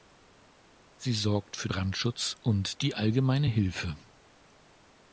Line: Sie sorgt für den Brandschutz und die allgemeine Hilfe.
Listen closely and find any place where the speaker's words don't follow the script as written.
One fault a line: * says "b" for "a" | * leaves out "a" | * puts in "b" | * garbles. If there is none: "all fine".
* leaves out "den"